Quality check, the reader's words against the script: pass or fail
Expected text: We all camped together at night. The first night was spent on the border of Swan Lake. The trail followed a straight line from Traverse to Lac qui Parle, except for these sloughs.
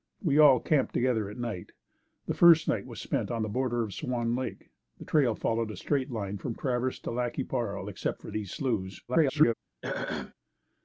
fail